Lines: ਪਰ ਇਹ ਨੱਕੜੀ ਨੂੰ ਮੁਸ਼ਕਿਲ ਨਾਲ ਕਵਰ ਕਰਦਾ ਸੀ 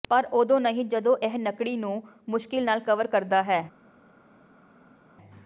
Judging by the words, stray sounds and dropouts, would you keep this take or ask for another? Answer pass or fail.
fail